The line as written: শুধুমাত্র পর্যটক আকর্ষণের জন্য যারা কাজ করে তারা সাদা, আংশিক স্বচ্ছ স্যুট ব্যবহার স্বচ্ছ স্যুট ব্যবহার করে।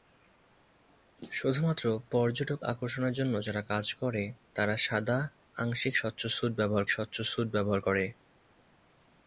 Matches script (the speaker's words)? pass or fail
pass